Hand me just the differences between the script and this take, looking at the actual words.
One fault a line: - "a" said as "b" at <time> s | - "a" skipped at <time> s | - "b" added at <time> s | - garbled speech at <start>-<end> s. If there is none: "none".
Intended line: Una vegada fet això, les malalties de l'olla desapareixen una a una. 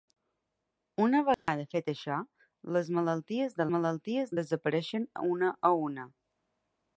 - "l'olla" said as "malalties" at 3.8 s